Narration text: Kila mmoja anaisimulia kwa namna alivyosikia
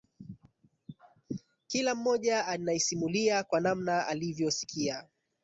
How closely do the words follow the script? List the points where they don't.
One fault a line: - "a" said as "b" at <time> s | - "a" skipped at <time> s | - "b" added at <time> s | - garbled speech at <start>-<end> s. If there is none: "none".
none